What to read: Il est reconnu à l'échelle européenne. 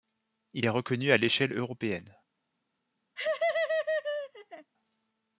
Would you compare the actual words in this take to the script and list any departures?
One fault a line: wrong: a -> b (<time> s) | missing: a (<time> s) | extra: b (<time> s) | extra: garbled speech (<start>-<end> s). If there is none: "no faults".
no faults